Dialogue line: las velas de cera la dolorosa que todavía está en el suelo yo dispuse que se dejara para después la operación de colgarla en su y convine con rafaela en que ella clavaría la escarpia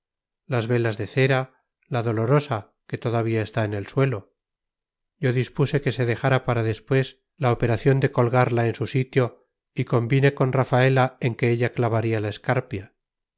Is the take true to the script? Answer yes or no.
no